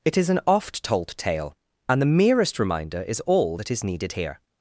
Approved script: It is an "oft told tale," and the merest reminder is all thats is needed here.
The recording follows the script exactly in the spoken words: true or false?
false